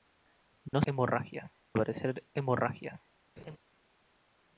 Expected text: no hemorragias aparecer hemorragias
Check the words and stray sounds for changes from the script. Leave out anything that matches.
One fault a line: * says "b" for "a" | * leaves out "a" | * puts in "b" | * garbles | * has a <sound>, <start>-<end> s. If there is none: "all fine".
* has a dropout, 0.7-0.7 s
* has a laugh, 3.4-3.6 s